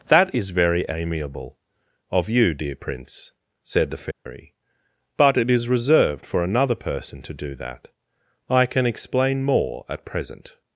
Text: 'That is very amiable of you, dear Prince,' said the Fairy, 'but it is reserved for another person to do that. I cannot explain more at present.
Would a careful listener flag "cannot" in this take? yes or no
yes